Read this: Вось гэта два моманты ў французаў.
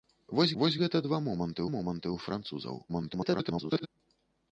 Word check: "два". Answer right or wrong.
right